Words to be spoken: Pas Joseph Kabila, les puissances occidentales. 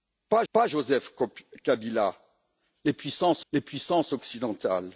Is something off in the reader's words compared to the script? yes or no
yes